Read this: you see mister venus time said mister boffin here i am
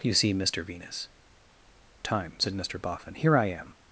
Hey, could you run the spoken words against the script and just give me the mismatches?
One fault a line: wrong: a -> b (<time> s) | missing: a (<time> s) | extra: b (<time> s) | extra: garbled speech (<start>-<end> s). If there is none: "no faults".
no faults